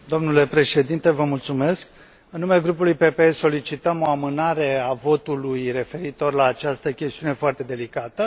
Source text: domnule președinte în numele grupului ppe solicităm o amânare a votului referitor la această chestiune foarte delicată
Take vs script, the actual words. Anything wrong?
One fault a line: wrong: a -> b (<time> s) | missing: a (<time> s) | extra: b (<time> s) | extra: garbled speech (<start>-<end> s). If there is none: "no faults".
no faults